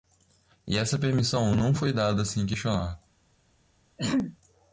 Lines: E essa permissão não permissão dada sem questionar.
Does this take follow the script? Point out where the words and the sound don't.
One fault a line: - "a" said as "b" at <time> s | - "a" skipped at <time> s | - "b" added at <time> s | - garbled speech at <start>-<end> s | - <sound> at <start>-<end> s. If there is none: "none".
- "permissão" said as "foi" at 1.8 s
- throat clearing at 4.0-4.4 s